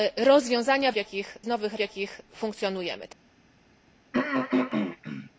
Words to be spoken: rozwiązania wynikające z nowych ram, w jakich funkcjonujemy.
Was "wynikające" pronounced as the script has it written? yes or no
no